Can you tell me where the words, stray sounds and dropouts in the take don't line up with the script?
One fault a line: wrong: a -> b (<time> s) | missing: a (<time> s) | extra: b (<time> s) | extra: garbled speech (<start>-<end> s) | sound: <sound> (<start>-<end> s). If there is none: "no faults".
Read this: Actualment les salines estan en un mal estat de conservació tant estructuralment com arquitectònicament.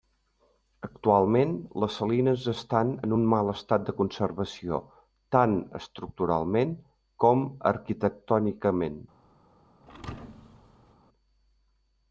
sound: thud (9.8-10.9 s)